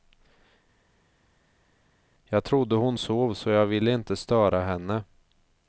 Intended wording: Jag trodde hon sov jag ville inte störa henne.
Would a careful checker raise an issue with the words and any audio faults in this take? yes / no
yes